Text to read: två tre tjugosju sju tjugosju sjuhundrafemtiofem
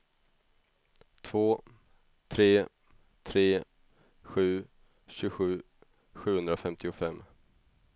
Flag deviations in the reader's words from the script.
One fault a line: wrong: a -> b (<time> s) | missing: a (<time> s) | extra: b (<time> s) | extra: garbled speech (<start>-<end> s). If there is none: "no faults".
wrong: tjugosju -> tre (3.2 s)